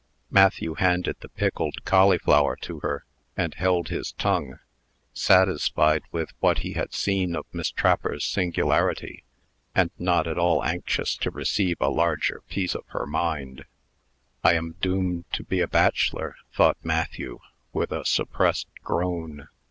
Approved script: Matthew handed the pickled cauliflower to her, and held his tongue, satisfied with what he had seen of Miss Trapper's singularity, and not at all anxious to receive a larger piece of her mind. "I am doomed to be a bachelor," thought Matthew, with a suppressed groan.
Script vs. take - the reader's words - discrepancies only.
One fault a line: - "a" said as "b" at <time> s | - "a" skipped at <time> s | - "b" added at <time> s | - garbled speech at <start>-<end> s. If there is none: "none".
none